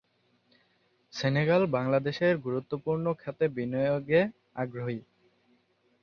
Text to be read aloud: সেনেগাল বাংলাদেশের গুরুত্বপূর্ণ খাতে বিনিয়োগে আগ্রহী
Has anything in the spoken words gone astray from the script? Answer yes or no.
no